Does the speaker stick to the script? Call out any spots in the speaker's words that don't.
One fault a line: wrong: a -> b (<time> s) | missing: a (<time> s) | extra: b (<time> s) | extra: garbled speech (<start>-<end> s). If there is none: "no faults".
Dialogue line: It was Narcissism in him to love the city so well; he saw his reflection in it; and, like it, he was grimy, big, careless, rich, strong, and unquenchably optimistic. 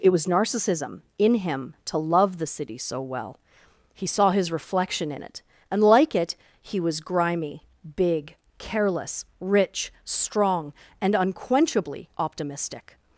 no faults